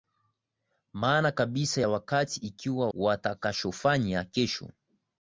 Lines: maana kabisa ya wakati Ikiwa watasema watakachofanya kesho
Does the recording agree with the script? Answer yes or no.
no